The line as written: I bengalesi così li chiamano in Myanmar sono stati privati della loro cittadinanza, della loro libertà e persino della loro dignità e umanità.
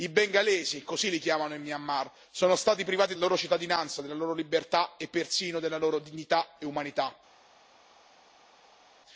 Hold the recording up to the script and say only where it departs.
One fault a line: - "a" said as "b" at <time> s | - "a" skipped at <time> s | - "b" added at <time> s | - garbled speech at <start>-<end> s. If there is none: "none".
- "della" skipped at 3.1 s